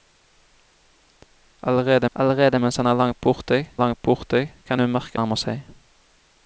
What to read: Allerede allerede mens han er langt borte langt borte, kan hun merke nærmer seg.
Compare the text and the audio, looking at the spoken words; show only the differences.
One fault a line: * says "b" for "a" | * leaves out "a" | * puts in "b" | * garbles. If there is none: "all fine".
all fine